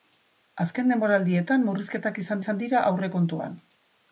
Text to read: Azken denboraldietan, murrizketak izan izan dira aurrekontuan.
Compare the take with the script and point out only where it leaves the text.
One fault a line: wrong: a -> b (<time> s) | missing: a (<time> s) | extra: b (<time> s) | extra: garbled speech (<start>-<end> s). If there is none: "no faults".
no faults